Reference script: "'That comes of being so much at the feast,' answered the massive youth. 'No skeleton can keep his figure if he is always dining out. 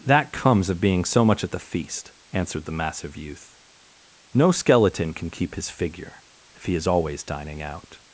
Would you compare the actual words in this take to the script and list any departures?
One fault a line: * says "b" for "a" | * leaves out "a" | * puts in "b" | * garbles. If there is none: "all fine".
all fine